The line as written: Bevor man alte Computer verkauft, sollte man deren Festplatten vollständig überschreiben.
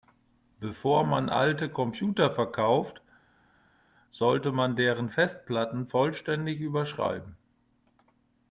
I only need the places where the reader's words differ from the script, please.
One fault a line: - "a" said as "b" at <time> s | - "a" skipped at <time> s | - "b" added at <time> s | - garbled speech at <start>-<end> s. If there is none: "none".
none